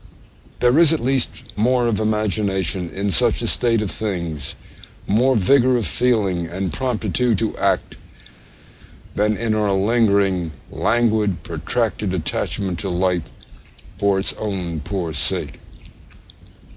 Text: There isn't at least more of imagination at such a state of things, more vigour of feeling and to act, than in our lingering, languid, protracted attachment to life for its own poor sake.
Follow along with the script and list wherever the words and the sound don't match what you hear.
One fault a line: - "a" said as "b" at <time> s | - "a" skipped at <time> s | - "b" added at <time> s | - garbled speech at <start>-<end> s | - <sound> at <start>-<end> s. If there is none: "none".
- "isn't" said as "is" at 0.8 s
- "at" said as "in" at 2.9 s
- "promptitude" added at 6.7 s